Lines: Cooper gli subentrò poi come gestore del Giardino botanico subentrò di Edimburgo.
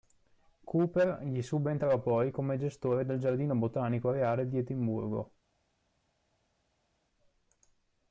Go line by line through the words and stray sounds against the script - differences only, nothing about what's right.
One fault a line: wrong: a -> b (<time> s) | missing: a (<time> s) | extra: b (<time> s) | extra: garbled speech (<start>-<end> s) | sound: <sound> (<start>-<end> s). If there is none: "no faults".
wrong: subentrò -> reale (4.1 s)